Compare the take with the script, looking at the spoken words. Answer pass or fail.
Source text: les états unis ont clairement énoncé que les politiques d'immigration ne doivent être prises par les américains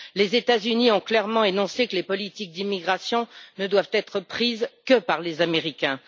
fail